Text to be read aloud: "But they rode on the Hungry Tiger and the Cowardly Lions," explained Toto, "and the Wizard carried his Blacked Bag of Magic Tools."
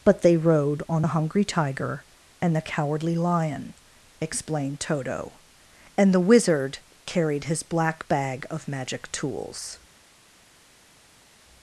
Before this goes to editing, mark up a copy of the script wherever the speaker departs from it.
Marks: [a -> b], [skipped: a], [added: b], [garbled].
"But they rode on the Hungry Tiger and the Cowardly [Lions," -> Lion] explained Toto, "and the Wizard carried his [Blacked -> Black] Bag of Magic Tools."